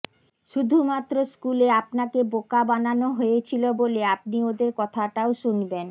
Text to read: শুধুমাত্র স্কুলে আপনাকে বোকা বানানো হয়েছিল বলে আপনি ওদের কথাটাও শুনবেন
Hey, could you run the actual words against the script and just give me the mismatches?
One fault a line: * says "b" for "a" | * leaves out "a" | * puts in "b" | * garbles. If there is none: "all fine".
all fine